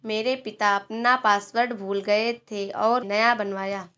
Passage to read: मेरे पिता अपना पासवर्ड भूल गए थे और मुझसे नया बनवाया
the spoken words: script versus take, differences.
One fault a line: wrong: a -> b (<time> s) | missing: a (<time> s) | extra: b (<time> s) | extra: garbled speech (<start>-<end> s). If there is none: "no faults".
missing: मुझसे (3.0 s)